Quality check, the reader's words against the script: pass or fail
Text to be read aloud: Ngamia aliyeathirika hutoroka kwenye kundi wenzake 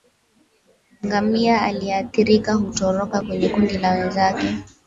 fail